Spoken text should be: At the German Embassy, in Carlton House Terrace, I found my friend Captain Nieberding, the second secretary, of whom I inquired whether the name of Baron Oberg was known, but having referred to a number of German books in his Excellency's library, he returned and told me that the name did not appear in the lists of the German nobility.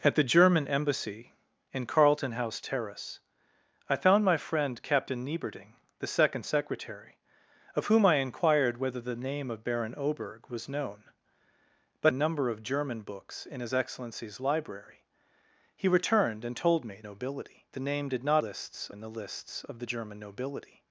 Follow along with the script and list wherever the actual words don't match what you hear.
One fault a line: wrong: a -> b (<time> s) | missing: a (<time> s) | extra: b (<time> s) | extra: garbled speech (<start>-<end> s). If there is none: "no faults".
missing: having referred to (12.1 s)
wrong: that -> nobility (17.0 s)
wrong: appear -> lists (18.4 s)